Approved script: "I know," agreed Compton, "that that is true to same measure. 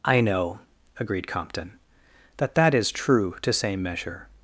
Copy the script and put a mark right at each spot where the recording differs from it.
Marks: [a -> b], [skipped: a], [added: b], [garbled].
"I know," agreed Compton, "that that is true to same measure.